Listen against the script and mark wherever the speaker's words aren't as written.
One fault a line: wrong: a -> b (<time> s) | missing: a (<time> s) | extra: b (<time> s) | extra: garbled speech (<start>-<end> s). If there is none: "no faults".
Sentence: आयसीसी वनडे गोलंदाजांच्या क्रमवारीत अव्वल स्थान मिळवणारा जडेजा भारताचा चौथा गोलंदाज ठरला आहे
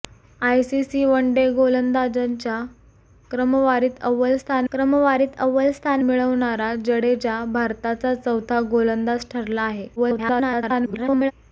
extra: क्रमवारीत अव्वल स्थान (4.7 s)
extra: garbled speech (10.0-11.3 s)